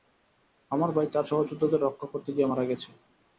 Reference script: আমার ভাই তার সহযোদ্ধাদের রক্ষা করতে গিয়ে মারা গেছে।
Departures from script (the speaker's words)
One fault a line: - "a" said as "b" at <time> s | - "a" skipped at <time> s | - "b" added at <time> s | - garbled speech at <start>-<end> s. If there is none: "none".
none